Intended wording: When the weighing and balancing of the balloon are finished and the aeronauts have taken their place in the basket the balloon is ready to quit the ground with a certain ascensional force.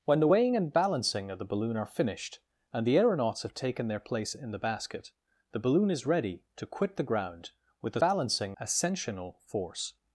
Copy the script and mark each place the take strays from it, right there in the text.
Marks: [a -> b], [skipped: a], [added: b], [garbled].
When the weighing and balancing of the balloon are finished and the aeronauts have taken their place in the basket the balloon is ready to quit the ground with a [certain -> balancing] ascensional force.